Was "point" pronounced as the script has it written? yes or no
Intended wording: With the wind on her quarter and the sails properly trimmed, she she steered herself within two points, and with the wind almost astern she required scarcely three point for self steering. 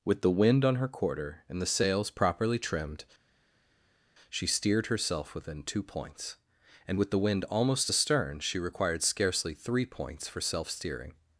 no